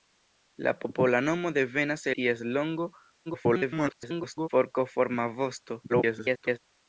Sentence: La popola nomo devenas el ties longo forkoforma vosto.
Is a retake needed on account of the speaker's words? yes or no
yes